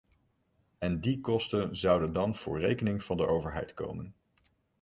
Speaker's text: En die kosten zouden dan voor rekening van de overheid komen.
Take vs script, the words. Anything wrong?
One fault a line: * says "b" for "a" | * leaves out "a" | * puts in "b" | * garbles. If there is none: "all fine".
all fine